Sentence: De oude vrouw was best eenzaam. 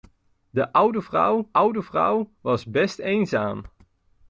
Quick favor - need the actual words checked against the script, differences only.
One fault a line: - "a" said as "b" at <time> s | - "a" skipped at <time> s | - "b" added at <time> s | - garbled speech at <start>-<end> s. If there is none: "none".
- "oude vrouw" added at 1.5 s